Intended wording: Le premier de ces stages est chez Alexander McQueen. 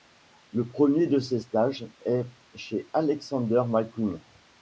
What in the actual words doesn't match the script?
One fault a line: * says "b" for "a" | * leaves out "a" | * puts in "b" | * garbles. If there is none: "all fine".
all fine